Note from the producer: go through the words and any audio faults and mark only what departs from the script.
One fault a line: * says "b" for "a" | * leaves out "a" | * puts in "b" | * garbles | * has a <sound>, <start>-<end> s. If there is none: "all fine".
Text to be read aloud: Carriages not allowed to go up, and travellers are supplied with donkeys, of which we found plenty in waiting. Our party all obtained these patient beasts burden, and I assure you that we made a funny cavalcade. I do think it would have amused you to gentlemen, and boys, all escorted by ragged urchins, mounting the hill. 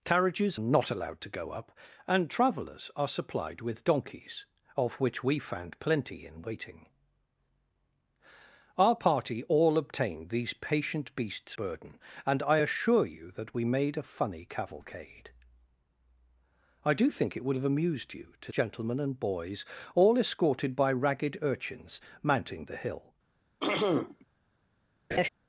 * has a throat clearing, 23.6-24.2 s
* has a laugh, 25.1-25.3 s